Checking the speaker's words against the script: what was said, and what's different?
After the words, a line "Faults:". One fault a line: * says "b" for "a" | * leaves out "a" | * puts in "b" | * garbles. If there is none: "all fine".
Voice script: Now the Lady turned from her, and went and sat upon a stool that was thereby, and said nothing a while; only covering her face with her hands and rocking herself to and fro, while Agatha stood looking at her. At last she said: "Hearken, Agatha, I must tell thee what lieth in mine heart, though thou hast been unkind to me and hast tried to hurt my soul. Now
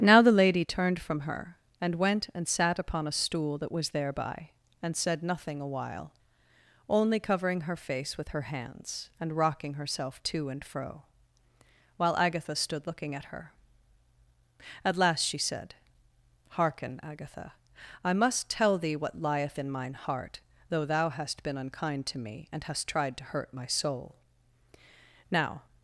Now the Lady turned from her, and went and sat upon a stool that was thereby, and said nothing a while; only covering her face with her hands and rocking herself to and fro, while Agatha stood looking at her. At last she said: "Hearken, Agatha, I must tell thee what lieth in mine heart, though thou hast been unkind to me and hast tried to hurt my soul. Now
Faults:
all fine